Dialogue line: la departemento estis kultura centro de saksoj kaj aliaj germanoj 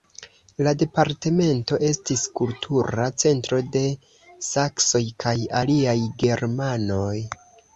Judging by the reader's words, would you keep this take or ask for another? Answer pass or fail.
pass